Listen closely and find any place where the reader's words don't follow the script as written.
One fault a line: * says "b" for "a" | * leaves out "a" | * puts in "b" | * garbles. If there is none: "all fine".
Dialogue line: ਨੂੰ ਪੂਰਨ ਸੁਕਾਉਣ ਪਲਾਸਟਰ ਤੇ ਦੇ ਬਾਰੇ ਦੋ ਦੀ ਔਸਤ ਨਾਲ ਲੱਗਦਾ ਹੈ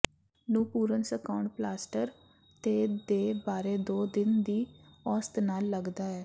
* puts in "ਦਿਨ"